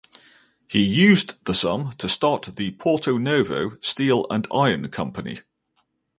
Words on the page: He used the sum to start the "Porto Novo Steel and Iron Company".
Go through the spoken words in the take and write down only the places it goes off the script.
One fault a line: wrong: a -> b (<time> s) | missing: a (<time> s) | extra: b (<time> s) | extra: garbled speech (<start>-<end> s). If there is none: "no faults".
no faults